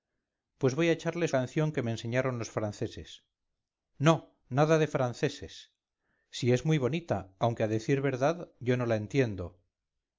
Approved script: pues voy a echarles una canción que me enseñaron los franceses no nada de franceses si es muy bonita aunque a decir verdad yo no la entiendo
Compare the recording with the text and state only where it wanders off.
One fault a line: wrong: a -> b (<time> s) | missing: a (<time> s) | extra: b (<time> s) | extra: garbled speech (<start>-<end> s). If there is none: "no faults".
missing: una (1.4 s)